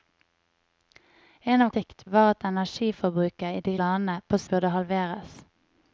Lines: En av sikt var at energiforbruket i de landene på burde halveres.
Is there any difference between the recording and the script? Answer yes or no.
no